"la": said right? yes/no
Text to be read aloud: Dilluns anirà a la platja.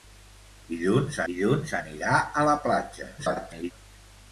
yes